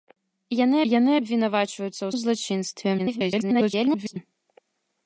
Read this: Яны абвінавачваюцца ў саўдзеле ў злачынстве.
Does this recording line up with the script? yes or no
no